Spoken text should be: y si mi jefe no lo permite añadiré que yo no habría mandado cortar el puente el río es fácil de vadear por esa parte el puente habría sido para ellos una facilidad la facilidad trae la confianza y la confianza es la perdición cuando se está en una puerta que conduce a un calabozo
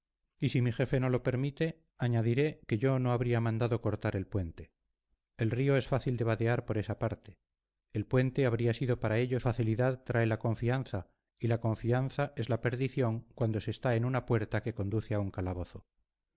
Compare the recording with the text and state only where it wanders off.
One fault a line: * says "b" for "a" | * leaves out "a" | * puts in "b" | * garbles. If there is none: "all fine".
* leaves out "una facilidad la"